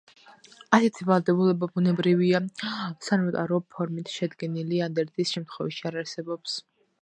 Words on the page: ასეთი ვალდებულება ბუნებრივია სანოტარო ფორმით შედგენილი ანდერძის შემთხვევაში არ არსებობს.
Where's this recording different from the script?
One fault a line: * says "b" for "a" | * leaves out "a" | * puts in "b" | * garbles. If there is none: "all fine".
all fine